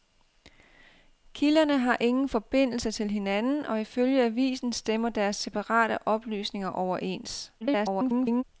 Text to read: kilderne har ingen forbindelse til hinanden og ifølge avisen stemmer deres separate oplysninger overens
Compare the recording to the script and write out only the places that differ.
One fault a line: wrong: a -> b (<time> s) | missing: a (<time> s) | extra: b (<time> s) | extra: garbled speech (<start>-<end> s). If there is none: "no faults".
extra: garbled speech (7.6-8.4 s)